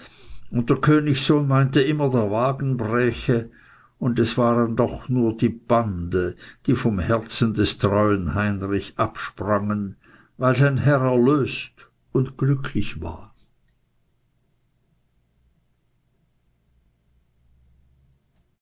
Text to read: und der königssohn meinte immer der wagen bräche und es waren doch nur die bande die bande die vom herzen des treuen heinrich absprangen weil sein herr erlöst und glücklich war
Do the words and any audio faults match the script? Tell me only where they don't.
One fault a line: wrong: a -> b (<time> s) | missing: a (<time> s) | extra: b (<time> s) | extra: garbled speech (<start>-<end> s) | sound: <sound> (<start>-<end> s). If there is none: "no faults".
missing: bande die (6.8 s)